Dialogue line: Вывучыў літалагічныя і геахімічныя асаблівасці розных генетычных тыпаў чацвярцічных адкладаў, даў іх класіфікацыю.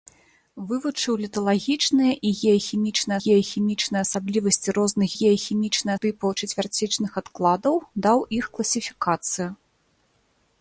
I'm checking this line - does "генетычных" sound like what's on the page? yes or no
no